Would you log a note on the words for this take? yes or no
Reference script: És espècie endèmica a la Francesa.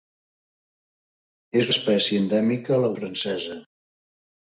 no